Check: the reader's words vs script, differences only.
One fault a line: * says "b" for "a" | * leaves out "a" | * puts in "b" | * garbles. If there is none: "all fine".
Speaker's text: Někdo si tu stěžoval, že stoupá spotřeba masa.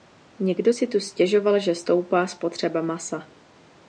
all fine